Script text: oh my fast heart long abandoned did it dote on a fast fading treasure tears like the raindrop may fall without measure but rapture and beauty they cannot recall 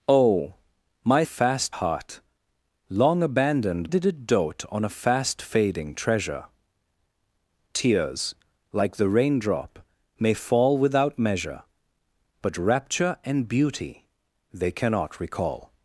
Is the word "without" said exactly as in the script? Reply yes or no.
yes